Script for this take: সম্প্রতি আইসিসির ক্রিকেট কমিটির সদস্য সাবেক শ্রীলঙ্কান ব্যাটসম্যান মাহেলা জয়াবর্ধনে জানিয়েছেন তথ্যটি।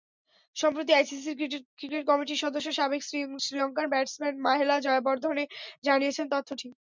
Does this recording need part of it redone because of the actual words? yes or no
no